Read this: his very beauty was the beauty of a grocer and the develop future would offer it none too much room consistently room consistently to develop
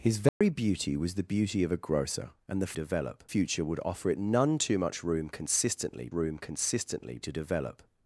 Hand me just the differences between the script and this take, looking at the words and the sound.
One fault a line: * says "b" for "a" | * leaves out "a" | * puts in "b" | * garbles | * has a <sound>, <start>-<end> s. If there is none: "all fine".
* has a dropout, 0.3-0.4 s